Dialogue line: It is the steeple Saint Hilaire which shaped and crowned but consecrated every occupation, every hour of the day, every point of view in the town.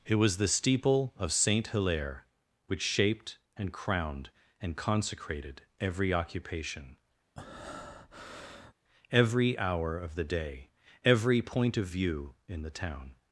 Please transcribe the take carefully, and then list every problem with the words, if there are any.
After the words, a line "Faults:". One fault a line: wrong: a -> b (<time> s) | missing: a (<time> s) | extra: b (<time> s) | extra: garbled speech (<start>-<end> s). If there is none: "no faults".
It was the steeple of Saint Hilaire which shaped and crowned and consecrated every occupation, every hour of the day, every point of view in the town.
Faults:
wrong: is -> was (0.1 s)
extra: of (1.2 s)
wrong: but -> and (4.6 s)